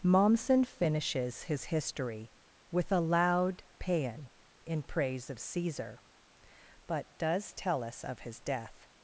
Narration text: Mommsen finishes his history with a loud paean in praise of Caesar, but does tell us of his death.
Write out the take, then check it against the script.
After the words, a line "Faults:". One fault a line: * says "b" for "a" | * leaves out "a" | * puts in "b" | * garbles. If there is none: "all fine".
Mommsen finishes his history with a loud paean in praise of Caesar, but does tell us of his death.
Faults:
all fine